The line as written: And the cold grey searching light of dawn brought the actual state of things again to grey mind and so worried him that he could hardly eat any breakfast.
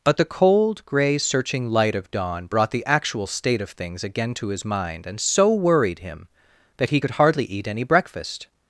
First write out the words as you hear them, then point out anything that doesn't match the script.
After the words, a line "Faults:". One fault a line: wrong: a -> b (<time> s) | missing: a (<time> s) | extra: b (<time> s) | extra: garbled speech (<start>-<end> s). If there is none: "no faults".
But the cold grey searching light of dawn brought the actual state of things again to his mind and so worried him that he could hardly eat any breakfast.
Faults:
wrong: And -> But (0.0 s)
wrong: grey -> his (4.5 s)